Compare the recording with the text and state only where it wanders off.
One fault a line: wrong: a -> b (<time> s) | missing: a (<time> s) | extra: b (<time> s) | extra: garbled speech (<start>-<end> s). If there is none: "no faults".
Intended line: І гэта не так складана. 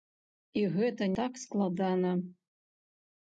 missing: не (1.1 s)